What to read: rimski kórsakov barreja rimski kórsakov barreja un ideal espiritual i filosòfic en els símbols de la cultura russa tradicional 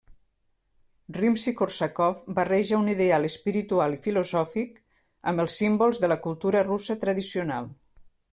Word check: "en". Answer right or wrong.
wrong